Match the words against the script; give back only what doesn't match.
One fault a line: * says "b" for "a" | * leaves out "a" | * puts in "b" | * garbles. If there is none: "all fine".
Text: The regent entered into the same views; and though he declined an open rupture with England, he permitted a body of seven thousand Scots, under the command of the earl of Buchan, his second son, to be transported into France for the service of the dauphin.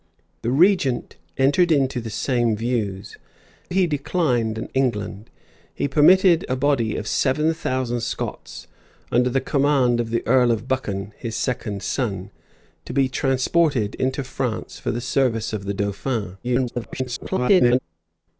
* leaves out "and though"
* leaves out "open rupture with"
* garbles